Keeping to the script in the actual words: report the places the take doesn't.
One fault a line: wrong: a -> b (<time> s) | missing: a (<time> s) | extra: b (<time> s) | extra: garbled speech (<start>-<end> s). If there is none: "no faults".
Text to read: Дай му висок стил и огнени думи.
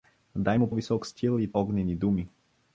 no faults